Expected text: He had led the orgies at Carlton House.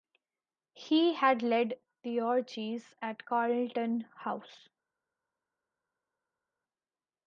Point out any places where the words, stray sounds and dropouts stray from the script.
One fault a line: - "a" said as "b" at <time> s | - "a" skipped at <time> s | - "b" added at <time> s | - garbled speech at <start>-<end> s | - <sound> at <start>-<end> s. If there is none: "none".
none